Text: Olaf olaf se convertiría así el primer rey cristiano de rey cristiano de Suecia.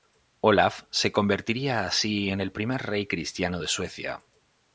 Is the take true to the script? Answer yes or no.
no